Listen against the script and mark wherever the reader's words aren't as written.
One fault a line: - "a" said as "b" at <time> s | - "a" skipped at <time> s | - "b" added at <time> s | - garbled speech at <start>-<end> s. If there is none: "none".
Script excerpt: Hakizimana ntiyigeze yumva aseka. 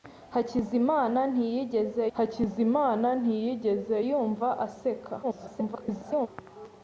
- "hakizimana ntiyigeze" added at 2.2 s
- garbled speech at 5.2-6.3 s